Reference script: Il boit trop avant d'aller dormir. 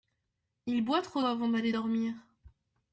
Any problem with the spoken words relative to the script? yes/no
no